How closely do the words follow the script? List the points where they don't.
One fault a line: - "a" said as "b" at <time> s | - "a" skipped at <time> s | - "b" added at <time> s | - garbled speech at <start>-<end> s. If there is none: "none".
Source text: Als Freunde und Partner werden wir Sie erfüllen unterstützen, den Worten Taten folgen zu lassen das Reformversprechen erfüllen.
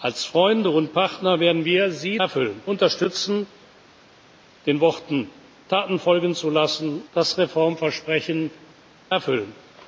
none